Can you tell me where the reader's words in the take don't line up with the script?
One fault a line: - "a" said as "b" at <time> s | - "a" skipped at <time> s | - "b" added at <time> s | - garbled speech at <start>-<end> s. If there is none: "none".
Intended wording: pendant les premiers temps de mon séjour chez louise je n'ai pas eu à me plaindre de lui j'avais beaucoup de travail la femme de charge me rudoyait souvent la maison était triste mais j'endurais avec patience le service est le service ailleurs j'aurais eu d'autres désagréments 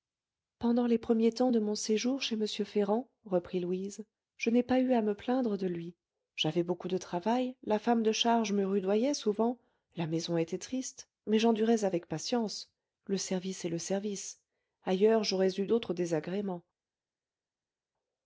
- "m ferrand reprit" added at 2.4 s